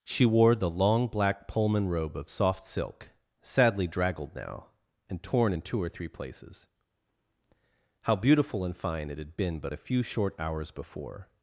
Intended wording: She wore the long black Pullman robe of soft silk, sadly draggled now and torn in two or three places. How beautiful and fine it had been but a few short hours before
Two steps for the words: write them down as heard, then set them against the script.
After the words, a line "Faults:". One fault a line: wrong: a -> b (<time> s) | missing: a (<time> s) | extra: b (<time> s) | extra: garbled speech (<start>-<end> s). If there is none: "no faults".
She wore the long black Pullman robe of soft silk, sadly draggled now and torn in two or three places. How beautiful and fine it had been but a few short hours before
Faults:
no faults